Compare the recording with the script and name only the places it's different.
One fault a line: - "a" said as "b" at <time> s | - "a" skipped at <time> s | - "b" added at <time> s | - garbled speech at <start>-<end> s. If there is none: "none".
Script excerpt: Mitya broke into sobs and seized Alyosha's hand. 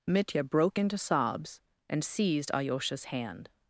none